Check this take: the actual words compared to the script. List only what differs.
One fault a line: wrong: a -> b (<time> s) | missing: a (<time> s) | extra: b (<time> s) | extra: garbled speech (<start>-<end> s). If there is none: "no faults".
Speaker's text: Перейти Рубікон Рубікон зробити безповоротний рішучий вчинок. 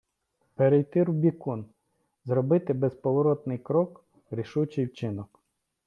missing: Рубікон (1.6 s)
extra: крок (3.6 s)